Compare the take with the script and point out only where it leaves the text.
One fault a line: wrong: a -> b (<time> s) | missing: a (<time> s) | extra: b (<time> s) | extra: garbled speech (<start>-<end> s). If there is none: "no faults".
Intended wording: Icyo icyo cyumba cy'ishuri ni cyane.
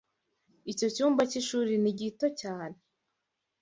missing: icyo (0.9 s)
extra: gito (2.0 s)